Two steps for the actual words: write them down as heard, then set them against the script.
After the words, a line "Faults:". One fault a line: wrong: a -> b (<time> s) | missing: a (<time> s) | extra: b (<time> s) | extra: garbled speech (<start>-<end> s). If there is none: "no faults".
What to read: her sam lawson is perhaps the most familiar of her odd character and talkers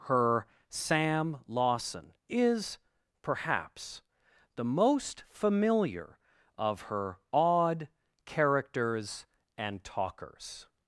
her sam lawson is perhaps the most familiar of her odd characters and talkers
Faults:
wrong: character -> characters (8.2 s)